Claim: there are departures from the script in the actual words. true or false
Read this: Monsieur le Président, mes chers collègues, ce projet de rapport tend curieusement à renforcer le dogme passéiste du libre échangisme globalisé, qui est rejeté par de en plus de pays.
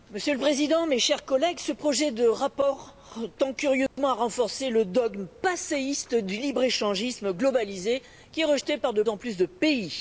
false